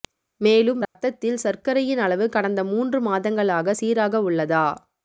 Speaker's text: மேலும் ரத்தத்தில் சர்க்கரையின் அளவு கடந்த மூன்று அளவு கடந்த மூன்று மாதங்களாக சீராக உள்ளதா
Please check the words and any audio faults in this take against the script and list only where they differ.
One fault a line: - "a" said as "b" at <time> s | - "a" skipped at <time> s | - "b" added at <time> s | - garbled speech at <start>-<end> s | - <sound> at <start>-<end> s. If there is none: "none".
- dropout at 0.8-1.0 s
- "அளவு கடந்த மூன்று" skipped at 3.0 s